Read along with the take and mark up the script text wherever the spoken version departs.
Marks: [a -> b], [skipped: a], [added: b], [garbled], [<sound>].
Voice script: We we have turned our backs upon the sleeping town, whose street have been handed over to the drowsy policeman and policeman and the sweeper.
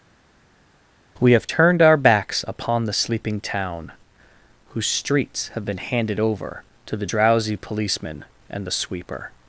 We [skipped: we] have turned our backs upon the sleeping town, whose [street -> streets] have been handed over to the drowsy policeman and [skipped: policeman and] the sweeper.